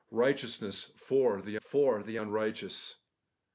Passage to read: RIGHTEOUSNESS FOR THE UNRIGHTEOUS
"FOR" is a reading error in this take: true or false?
false